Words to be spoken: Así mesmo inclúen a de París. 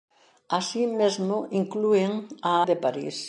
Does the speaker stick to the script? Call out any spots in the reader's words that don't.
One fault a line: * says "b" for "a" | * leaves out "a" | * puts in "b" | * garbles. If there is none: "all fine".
all fine